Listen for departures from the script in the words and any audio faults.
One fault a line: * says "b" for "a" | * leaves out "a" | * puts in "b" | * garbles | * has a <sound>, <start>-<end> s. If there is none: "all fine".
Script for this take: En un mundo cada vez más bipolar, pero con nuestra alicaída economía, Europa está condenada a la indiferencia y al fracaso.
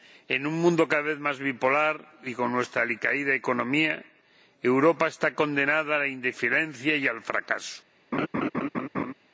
* says "y" for "pero"
* has a laugh, 8.1-9.1 s